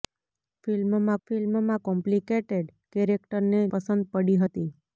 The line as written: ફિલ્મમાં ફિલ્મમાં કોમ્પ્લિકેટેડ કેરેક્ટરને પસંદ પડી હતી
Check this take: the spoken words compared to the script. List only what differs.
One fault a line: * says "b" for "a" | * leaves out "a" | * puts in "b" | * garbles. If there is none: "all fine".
all fine